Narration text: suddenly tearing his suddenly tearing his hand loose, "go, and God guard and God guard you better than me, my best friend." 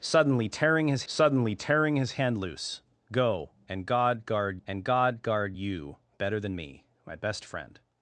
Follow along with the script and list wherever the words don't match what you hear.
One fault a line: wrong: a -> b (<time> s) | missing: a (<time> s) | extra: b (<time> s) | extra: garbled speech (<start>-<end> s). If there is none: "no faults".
no faults